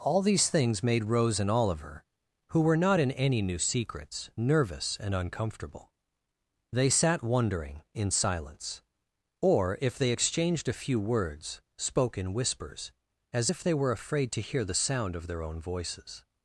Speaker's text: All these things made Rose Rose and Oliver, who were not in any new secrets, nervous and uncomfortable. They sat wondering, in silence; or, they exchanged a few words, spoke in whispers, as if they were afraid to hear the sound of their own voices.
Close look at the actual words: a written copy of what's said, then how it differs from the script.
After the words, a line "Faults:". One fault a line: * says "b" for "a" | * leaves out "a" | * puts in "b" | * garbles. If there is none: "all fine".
All these things made Rose and Oliver, who were not in any new secrets, nervous and uncomfortable. They sat wondering, in silence; or, if they exchanged a few words, spoke in whispers, as if they were afraid to hear the sound of their own voices.
Faults:
* leaves out "Rose"
* puts in "if"